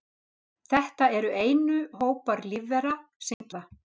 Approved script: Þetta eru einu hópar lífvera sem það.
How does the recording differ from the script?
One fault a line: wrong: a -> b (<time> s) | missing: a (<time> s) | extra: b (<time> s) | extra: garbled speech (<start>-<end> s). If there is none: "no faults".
no faults